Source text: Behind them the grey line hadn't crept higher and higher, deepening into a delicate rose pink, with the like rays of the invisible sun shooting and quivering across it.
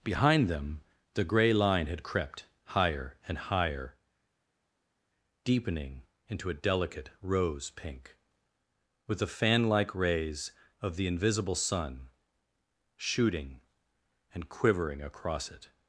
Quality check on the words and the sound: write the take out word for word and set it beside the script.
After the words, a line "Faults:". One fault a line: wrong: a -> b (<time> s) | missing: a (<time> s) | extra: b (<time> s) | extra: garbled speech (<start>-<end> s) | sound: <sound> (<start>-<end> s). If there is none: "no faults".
Behind them the grey line had crept higher and higher, deepening into a delicate rose pink, with the fan like rays of the invisible sun shooting and quivering across it.
Faults:
wrong: hadn't -> had (1.9 s)
extra: fan (9.3 s)